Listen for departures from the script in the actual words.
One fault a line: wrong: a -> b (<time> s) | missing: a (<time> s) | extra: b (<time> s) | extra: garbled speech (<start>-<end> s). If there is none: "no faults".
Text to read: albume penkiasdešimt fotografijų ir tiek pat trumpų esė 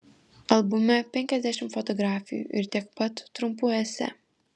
no faults